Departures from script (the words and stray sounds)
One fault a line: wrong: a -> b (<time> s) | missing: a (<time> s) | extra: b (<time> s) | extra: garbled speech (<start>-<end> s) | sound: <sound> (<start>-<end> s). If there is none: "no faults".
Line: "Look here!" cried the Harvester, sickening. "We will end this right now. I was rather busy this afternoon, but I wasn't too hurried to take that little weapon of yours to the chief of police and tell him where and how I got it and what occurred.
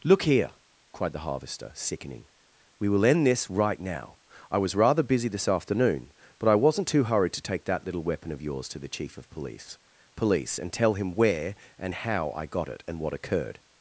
extra: police (10.2 s)